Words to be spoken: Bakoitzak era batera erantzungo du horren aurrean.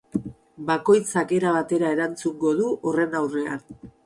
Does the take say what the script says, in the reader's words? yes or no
yes